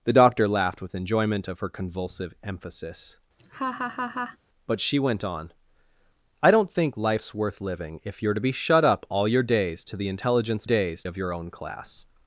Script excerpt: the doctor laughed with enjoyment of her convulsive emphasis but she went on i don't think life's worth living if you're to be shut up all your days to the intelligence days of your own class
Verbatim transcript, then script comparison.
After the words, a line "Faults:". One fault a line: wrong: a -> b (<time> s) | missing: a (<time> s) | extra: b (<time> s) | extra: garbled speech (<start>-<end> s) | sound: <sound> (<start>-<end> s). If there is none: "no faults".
the doctor laughed with enjoyment of her convulsive emphasis but she went on i don't think life's worth living if you're to be shut up all your days to the intelligence days of your own class
Faults:
sound: laugh (3.4-4.4 s)